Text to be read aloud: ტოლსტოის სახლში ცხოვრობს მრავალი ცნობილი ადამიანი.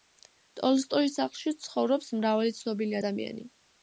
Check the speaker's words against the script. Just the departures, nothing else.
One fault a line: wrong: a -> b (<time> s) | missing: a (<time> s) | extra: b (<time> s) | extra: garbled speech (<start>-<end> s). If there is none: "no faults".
no faults